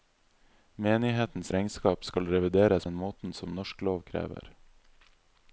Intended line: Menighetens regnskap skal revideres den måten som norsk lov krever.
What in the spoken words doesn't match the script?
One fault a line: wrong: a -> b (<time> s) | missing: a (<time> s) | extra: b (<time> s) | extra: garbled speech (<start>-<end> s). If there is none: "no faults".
no faults